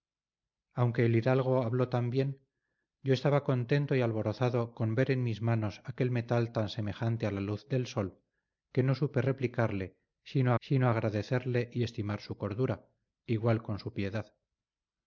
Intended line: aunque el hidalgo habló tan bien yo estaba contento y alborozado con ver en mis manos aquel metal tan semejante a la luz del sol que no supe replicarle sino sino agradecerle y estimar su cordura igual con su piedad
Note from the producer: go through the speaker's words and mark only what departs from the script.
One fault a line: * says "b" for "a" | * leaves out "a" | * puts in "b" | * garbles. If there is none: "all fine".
all fine